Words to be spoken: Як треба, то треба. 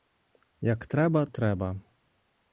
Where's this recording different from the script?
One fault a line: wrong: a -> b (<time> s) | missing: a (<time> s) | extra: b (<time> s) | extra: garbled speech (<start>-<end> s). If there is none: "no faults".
missing: то (1.3 s)